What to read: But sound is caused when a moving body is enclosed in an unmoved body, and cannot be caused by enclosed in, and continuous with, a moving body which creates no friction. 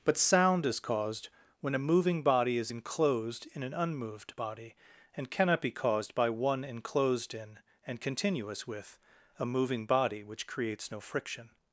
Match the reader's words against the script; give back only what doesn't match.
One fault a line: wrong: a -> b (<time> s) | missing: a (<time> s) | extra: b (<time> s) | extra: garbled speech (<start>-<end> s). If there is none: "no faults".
extra: one (6.3 s)